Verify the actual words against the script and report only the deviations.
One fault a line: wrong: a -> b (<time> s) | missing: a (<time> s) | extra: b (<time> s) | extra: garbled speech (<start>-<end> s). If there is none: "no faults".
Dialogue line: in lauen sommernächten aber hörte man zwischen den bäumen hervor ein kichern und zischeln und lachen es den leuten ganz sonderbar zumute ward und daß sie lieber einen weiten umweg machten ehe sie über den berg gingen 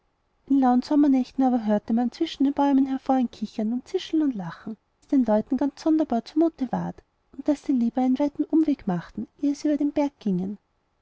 no faults